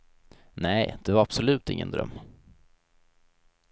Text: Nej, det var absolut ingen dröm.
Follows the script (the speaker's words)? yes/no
yes